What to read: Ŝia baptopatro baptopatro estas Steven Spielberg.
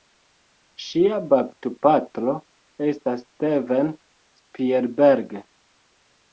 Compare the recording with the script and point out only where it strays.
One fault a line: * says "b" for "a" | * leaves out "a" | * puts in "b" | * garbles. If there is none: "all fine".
* leaves out "baptopatro"